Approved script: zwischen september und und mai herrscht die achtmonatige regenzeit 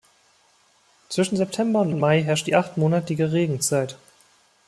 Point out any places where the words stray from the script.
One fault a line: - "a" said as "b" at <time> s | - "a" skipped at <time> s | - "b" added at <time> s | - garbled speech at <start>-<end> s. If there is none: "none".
none